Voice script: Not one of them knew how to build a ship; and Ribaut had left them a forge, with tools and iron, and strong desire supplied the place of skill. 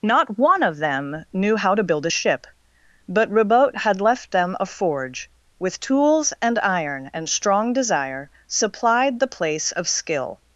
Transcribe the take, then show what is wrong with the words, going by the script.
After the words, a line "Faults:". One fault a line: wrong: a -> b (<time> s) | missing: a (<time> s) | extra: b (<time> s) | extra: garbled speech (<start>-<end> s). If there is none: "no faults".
Not one of them knew how to build a ship; but Ribaut had left them a forge, with tools and iron, and strong desire supplied the place of skill.
Faults:
wrong: and -> but (3.1 s)